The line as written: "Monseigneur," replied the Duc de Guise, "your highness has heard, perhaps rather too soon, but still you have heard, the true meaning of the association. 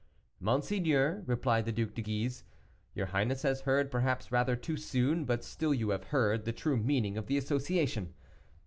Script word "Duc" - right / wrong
right